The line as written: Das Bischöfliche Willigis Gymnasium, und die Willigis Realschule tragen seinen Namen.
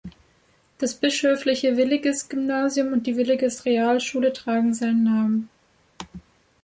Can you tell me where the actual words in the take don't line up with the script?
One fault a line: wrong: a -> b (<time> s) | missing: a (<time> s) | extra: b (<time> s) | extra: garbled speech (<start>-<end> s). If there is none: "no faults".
no faults